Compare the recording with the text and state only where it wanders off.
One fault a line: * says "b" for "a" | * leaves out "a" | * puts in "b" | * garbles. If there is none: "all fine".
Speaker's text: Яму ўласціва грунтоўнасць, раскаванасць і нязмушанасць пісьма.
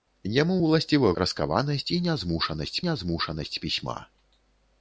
* leaves out "грунтоўнасць"
* puts in "нязмушанасць"